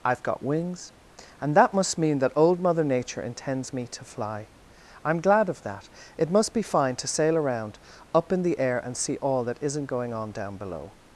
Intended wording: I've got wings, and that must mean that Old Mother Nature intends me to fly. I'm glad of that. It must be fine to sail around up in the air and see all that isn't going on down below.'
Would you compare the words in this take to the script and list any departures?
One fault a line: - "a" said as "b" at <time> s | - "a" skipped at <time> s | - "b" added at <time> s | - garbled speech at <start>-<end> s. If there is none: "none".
none